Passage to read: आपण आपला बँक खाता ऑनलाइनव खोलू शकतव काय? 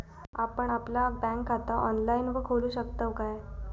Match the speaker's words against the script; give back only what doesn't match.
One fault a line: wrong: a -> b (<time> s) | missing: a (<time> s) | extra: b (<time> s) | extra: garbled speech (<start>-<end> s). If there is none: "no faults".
no faults